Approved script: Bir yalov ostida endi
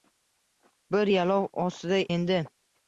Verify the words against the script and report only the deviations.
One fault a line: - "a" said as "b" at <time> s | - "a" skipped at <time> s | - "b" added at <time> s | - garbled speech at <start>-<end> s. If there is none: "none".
none